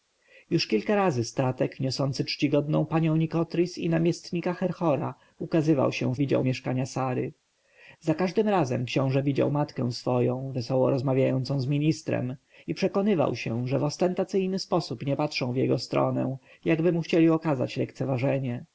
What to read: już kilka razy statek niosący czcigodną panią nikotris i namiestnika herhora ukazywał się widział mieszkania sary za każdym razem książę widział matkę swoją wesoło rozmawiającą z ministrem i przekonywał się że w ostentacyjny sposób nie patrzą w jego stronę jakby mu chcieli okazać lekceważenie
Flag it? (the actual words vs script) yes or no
no